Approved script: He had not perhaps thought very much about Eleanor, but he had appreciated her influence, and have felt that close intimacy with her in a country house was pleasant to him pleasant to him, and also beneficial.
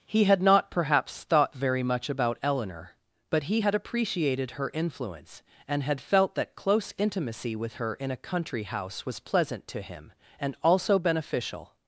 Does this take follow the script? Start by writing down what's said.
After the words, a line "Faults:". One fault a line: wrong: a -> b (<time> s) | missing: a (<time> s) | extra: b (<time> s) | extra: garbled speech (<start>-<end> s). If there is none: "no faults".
He had not perhaps thought very much about Eleanor, but he had appreciated her influence, and had felt that close intimacy with her in a country house was pleasant to him, and also beneficial.
Faults:
wrong: have -> had (5.8 s)
missing: pleasant to him (10.1 s)